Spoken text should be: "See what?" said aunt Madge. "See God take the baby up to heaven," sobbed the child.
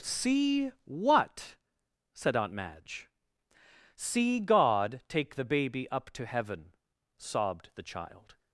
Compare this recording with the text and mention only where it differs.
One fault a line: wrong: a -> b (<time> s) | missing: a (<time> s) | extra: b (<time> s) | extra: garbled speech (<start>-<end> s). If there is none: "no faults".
no faults